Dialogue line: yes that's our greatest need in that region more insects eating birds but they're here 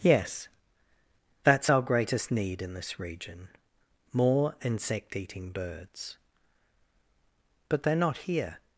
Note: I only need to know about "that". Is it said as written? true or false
false